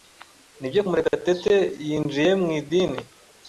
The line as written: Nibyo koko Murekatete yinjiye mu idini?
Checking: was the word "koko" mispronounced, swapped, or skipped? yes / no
yes